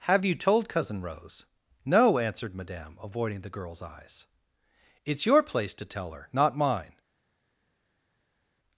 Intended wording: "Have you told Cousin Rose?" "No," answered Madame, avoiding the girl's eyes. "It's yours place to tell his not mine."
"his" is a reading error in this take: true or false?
true